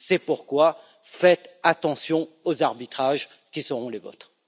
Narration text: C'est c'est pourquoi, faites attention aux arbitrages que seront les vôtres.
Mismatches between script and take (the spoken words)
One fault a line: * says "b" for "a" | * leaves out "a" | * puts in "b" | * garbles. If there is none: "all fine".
* leaves out "c'est"
* says "qui" for "que"